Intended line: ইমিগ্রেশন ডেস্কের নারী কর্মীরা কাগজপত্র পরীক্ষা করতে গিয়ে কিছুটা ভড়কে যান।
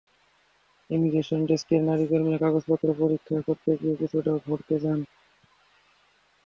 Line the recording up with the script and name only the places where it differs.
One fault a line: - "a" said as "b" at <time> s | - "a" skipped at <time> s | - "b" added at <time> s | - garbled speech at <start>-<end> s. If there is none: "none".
none